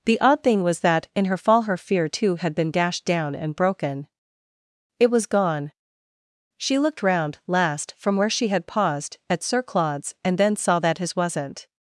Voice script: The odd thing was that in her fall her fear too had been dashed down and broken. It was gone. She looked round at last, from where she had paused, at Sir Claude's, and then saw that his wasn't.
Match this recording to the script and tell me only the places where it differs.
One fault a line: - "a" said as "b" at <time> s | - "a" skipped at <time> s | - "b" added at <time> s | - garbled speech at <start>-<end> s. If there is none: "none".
- "at" skipped at 7.4 s